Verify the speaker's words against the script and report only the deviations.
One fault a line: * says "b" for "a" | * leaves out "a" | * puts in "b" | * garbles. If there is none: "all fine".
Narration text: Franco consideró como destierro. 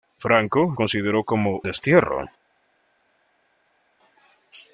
all fine